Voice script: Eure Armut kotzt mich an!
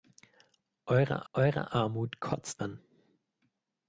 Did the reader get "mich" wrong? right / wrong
wrong